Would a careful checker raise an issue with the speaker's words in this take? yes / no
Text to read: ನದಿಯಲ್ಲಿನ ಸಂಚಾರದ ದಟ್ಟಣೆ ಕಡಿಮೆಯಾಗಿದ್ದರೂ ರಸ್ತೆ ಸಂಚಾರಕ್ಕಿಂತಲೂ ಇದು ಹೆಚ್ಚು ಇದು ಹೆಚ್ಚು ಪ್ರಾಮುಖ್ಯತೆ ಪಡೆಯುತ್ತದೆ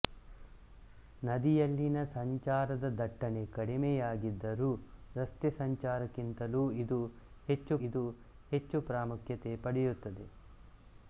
no